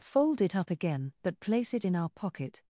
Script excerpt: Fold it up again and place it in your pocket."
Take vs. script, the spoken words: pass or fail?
fail